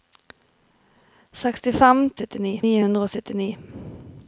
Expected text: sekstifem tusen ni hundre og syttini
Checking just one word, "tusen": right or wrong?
wrong